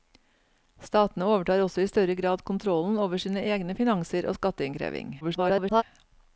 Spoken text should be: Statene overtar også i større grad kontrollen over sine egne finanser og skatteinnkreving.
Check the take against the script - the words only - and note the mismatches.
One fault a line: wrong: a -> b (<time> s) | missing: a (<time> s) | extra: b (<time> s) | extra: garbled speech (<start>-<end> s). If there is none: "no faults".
extra: garbled speech (5.2-5.8 s)